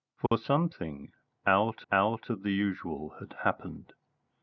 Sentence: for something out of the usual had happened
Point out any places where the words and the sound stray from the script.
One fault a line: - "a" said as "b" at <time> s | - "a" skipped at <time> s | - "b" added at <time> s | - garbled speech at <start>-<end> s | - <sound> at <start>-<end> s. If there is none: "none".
- dropout at 0.3-0.3 s
- "out" added at 1.9 s